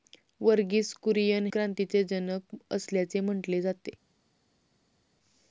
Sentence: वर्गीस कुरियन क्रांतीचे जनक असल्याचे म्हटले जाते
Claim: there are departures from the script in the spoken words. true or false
false